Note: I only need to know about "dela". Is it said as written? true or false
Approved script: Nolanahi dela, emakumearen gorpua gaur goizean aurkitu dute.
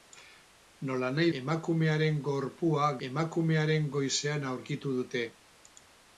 false